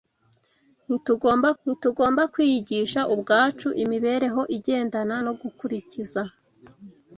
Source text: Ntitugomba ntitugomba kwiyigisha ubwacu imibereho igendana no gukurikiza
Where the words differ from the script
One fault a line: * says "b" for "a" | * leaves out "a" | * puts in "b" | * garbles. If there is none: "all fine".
all fine